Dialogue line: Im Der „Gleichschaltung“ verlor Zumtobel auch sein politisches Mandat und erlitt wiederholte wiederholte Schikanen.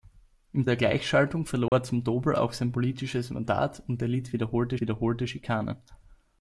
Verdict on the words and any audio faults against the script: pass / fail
fail